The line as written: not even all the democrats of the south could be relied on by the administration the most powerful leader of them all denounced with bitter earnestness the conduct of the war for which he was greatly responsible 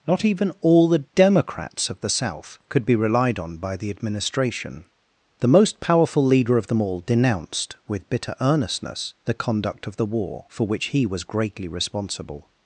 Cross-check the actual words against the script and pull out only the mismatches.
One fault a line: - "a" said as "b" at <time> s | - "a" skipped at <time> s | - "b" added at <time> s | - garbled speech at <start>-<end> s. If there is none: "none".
none